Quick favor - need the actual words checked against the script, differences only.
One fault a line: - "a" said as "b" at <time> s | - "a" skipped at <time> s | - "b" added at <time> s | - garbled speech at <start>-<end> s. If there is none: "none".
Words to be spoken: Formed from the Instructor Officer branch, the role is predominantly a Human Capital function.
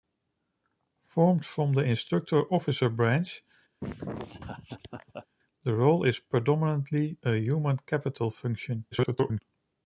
- garbled speech at 8.9-9.4 s